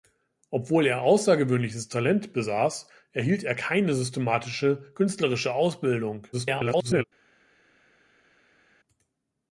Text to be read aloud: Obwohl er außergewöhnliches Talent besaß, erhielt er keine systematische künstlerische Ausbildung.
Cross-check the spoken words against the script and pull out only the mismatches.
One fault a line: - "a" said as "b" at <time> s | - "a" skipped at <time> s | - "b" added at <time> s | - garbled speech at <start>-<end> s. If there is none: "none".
- garbled speech at 6.3-7.0 s